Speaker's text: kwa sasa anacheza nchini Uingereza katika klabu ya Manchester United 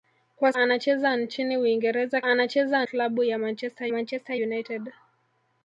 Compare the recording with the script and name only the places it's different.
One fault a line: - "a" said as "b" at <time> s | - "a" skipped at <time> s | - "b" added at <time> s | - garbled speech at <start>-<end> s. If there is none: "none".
- "sasa" skipped at 0.5 s
- "katika" said as "anacheza" at 2.2 s
- "Manchester" added at 3.9 s